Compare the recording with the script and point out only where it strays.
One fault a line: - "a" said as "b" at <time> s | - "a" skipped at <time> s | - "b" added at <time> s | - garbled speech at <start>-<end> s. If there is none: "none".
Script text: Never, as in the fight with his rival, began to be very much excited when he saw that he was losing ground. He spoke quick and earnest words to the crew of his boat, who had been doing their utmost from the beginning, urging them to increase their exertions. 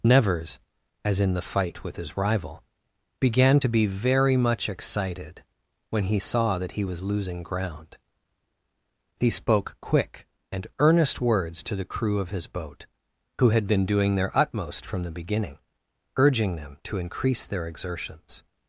- "Never" said as "Nevers" at 0.0 s